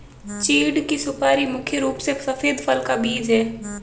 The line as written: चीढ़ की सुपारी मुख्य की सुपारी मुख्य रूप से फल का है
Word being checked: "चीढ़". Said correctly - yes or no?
yes